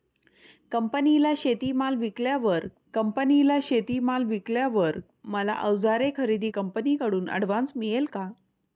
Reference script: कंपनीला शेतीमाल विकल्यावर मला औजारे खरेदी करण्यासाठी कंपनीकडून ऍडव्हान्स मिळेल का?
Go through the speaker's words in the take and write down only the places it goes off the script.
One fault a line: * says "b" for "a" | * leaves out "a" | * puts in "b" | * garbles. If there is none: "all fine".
* puts in "कंपनीला शेतीमाल विकल्यावर"
* leaves out "करण्यासाठी"